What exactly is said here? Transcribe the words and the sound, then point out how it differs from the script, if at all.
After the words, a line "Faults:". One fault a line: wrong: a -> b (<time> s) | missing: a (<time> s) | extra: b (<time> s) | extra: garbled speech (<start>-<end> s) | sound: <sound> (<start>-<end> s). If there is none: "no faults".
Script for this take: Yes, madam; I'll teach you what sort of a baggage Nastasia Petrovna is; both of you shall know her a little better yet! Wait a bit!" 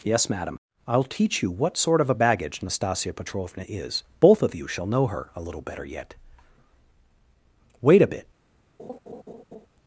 Yes, madam; I'll teach you what sort of a baggage Nastasia Petrovna is; both of you shall know her a little better yet! Wait a bit!"
Faults:
sound: laugh (8.8-9.7 s)